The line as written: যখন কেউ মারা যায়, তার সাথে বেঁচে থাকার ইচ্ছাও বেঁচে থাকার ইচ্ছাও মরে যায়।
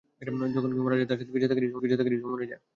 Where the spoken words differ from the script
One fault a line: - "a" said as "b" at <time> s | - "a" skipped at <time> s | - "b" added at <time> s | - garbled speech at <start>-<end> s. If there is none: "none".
none